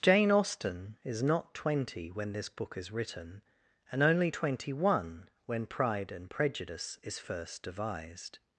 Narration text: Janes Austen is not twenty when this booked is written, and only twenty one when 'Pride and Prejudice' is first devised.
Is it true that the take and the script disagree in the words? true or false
true